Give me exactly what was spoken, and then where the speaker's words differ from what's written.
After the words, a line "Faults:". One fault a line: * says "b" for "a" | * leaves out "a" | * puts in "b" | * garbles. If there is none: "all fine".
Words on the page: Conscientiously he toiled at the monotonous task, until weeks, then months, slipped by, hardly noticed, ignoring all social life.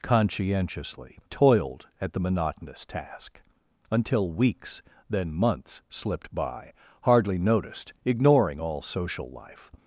Conscientiously toiled at the monotonous task, until weeks, then months, slipped by, hardly noticed, ignoring all social life.
Faults:
* leaves out "he"